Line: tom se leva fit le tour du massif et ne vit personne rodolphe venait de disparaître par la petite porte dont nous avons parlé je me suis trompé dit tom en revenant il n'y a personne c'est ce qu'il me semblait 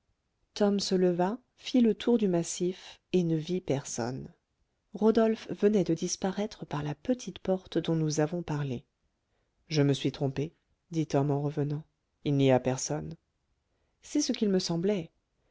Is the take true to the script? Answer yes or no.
yes